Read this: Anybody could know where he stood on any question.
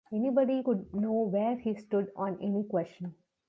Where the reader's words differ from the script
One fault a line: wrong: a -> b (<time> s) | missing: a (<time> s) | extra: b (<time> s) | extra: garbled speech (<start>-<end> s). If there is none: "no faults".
no faults